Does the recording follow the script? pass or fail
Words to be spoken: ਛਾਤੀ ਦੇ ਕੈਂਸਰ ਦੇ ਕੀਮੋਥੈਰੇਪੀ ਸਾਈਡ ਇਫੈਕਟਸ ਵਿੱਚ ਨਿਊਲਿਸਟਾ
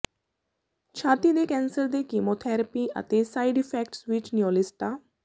fail